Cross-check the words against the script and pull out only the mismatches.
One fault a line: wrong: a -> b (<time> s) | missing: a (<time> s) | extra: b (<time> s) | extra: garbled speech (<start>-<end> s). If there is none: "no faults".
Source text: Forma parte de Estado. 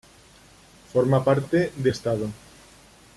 no faults